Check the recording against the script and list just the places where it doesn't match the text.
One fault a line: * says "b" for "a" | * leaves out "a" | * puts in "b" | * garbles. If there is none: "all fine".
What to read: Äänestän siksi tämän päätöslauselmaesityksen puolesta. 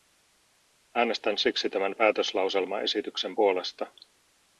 all fine